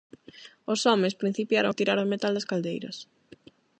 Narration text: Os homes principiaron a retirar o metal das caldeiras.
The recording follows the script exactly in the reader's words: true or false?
false